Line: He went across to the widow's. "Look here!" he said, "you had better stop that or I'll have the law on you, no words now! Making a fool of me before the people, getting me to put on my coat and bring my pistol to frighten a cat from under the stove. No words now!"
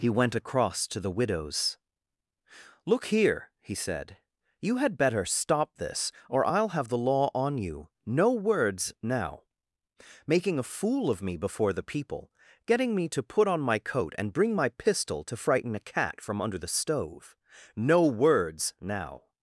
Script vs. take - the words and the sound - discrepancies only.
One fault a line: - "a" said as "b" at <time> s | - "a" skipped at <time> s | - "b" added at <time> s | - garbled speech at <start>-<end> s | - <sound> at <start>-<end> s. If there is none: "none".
- "that" said as "this" at 5.8 s